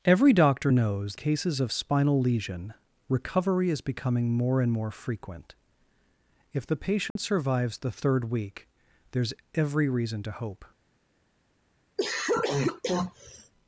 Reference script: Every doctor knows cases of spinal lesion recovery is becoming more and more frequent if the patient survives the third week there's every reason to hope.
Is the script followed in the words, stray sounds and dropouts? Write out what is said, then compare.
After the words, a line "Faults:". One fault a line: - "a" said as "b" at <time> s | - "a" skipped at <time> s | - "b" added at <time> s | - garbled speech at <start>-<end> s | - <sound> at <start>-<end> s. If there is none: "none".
Every doctor knows cases of spinal lesion recovery is becoming more and more frequent if the patient survives the third week there's every reason to hope.
Faults:
- dropout at 7.1-7.2 s
- cough at 12.0-13.5 s